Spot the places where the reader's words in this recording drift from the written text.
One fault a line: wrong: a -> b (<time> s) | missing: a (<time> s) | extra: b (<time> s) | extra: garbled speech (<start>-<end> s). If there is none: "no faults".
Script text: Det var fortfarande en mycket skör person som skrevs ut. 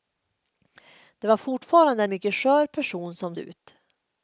missing: en (2.0 s)
missing: skrevs (3.4 s)